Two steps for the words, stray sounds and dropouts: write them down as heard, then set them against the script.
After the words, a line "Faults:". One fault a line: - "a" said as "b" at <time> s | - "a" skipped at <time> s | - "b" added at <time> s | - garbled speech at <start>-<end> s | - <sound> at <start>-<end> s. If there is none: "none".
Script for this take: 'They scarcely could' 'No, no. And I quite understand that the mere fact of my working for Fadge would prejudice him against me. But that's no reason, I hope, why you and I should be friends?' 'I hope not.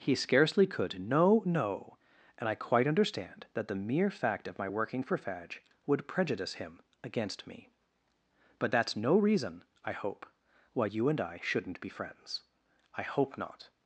'He scarcely could' 'No, no. And I quite understand that the mere fact of my working for Fadge would prejudice him against me. But that's no reason, I hope, why you and I shouldn't be friends?' 'I hope not.
Faults:
- "They" said as "He" at 0.0 s
- "should" said as "shouldn't" at 11.4 s